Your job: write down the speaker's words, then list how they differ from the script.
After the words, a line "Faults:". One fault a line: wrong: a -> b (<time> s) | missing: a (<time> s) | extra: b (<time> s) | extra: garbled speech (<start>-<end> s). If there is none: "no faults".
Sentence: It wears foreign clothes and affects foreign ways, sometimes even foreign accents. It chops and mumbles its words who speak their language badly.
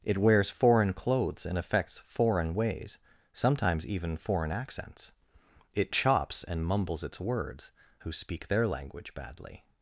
It wears foreign clothes and affects foreign ways, sometimes even foreign accents. It chops and mumbles its words who speak their language badly.
Faults:
no faults